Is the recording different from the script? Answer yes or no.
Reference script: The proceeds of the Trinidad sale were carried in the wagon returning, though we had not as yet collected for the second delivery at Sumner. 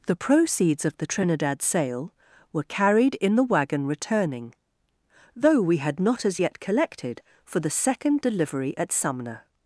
no